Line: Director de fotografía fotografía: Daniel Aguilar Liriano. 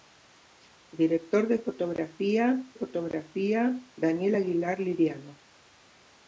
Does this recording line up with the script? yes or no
yes